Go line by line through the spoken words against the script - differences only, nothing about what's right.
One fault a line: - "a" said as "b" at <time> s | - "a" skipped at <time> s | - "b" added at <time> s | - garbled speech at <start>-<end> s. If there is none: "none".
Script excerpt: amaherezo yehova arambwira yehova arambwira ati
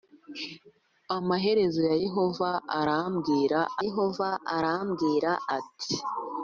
none